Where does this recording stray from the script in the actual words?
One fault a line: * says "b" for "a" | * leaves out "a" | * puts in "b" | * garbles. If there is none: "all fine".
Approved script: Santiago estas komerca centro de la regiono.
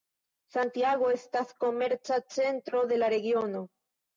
all fine